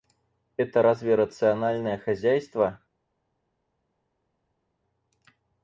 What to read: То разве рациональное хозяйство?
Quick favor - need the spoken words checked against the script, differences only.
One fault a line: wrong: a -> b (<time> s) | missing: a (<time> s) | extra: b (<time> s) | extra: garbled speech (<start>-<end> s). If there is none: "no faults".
wrong: То -> Это (0.6 s)